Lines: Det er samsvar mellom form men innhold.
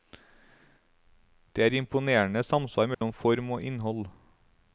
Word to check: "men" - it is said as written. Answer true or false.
false